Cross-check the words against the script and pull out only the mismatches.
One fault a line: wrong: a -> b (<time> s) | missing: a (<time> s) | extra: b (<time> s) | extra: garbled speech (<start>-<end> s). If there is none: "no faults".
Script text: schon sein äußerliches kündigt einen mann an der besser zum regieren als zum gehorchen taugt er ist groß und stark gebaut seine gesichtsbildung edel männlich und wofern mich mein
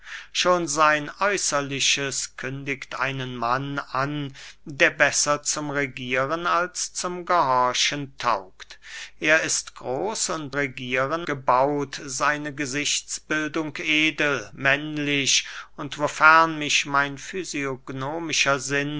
wrong: stark -> regieren (10.5 s)